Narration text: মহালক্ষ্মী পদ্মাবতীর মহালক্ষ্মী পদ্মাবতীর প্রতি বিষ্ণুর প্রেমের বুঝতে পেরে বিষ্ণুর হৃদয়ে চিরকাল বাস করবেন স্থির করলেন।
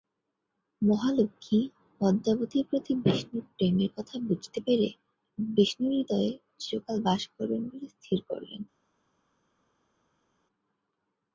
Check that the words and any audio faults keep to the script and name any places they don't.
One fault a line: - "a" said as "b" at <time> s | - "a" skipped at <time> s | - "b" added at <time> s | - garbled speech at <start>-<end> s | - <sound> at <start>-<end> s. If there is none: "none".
- "মহালক্ষ্মী পদ্মাবতীর" skipped at 2.6 s
- "কথা" added at 4.0 s
- "বলে" added at 7.7 s